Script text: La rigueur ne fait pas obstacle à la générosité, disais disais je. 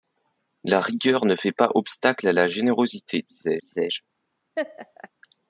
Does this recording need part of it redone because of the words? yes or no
no